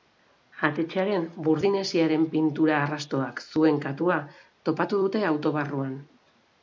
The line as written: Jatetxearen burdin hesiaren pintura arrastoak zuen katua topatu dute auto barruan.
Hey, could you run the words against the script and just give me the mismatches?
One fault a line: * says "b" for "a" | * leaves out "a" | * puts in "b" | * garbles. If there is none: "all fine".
all fine